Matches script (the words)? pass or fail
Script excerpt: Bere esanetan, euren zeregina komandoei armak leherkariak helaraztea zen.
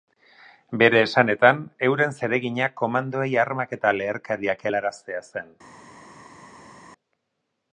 fail